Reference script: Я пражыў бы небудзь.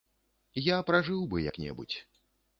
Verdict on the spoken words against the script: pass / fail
fail